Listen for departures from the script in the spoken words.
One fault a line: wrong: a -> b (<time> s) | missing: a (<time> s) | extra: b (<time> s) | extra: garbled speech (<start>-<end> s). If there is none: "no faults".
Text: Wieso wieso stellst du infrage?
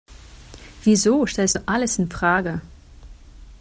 missing: wieso (1.3 s)
extra: alles (1.7 s)